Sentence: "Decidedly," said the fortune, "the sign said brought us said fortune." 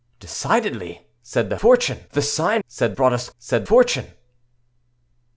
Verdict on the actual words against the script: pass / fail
pass